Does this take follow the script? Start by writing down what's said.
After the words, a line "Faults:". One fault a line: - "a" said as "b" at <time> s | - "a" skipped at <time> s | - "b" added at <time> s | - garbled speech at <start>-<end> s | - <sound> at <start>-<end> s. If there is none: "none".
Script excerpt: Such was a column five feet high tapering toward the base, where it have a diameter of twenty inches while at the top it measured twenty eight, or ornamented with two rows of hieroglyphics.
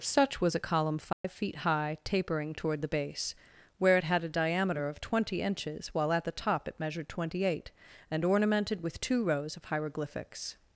Such was a column five feet high tapering toward the base, where it had a diameter of twenty inches while at the top it measured twenty eight, and ornamented with two rows of hieroglyphics.
Faults:
- dropout at 1.1-1.2 s
- "have" said as "had" at 4.0 s
- "or" said as "and" at 8.1 s